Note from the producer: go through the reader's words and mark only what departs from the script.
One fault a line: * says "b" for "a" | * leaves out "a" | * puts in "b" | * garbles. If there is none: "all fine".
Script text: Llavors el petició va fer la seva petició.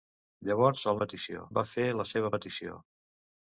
all fine